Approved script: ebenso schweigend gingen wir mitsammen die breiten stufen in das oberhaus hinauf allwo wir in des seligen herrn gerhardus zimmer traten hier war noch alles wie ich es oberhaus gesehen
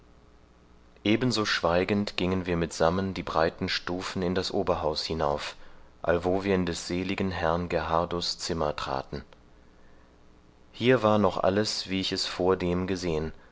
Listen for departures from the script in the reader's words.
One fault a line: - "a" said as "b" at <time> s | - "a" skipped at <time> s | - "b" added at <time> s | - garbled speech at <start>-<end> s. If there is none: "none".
- "oberhaus" said as "vordem" at 12.3 s